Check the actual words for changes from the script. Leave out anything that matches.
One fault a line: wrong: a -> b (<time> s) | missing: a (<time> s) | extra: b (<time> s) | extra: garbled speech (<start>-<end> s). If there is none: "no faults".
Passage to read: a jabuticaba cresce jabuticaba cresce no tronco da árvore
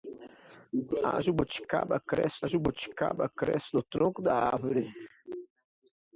no faults